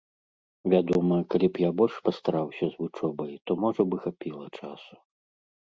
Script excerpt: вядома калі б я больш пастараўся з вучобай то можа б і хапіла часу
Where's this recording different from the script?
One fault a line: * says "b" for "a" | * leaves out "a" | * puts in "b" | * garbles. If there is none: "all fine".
all fine